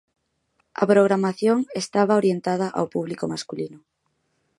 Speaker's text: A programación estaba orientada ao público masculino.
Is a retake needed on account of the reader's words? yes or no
no